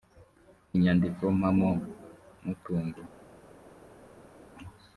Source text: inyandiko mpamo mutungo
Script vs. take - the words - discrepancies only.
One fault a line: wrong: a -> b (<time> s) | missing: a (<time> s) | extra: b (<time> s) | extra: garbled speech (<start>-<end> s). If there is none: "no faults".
no faults